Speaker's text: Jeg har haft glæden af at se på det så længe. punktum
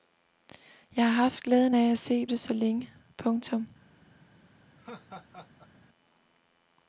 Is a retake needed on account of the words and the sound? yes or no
yes